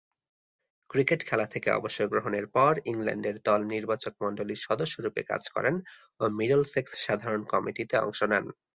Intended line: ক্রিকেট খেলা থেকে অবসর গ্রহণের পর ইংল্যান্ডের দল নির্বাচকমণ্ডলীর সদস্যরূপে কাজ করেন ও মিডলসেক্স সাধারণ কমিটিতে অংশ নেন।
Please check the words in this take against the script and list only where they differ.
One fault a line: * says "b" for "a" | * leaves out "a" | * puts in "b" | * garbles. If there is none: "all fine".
all fine